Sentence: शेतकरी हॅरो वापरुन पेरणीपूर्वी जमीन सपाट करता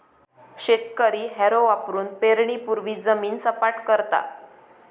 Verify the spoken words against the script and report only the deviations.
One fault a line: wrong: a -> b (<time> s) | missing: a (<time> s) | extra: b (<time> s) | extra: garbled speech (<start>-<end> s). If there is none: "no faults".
no faults